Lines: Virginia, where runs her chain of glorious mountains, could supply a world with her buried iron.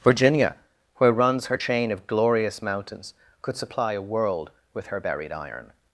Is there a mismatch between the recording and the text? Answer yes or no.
no